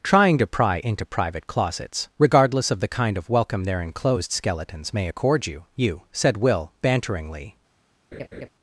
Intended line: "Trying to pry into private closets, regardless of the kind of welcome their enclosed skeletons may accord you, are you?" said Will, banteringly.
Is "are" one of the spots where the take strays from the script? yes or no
yes